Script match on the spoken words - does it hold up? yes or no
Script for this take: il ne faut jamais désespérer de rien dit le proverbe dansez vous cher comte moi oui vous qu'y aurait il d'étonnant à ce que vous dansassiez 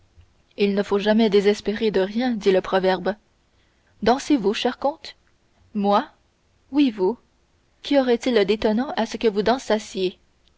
yes